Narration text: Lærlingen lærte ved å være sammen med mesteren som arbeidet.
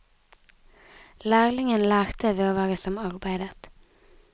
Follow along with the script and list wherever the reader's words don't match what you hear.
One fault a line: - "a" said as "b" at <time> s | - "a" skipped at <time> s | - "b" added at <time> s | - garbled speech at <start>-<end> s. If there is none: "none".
- "sammen med mesteren" skipped at 2.8 s